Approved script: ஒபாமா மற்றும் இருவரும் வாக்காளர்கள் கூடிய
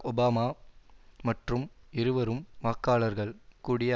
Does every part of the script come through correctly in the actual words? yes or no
yes